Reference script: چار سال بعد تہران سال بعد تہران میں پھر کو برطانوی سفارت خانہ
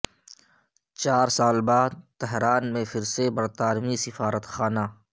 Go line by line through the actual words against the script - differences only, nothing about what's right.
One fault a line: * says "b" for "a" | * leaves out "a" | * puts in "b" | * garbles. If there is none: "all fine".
* leaves out "سال بعد تہران"
* says "سے" for "کو"